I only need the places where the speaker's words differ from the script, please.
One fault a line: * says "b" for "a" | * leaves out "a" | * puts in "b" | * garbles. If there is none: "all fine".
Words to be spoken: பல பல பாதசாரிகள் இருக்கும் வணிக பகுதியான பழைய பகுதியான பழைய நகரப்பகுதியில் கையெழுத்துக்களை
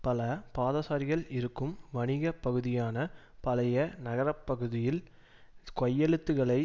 * leaves out "பல"
* leaves out "பகுதியான பழைய"